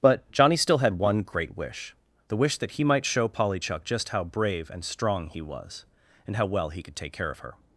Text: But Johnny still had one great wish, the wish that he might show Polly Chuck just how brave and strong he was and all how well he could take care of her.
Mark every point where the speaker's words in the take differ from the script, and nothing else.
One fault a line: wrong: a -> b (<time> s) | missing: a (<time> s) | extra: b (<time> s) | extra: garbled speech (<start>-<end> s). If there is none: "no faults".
missing: all (6.4 s)